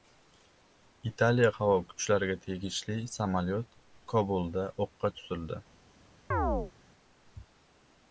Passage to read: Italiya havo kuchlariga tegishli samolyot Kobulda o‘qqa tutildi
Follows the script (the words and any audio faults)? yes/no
no